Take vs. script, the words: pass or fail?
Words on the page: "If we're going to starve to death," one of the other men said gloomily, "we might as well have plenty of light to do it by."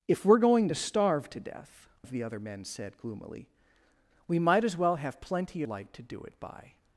fail